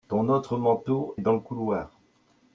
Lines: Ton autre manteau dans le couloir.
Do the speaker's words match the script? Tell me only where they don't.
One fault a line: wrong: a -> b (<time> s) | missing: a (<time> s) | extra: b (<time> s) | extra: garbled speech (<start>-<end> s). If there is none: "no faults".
no faults